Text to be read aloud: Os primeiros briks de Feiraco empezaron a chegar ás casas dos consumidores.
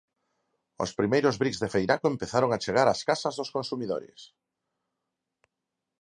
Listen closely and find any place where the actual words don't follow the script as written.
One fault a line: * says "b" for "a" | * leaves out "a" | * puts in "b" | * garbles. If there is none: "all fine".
all fine